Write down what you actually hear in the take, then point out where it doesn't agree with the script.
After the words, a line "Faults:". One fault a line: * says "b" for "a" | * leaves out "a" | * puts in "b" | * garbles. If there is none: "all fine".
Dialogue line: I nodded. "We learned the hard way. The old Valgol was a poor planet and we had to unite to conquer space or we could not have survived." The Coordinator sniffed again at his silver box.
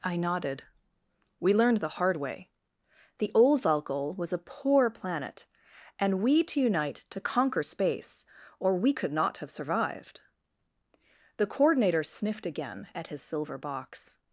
I nodded. "We learned the hard way. The old Valgol was a poor planet and we to unite to conquer space or we could not have survived." The Coordinator sniffed again at his silver box.
Faults:
* leaves out "had"